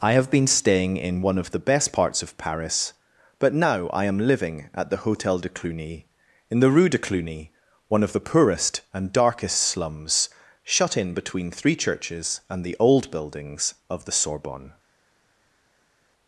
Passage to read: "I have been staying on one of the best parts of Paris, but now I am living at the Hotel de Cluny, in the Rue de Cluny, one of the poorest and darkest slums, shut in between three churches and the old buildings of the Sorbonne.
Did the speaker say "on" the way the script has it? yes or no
no